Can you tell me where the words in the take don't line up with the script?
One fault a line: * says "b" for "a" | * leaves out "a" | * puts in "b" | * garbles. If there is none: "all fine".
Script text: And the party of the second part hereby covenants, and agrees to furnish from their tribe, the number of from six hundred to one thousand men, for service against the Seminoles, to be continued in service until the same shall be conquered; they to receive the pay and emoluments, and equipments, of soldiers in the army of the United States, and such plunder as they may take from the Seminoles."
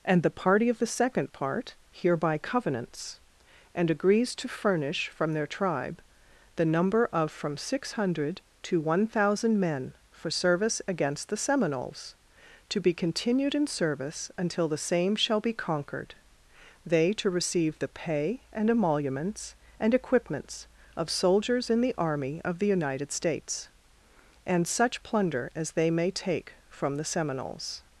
all fine